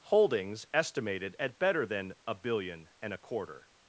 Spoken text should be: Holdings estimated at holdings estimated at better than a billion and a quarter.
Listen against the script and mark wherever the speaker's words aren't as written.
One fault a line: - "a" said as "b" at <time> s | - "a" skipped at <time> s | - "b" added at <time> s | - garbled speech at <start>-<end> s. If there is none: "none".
- "holdings estimated at" skipped at 1.6 s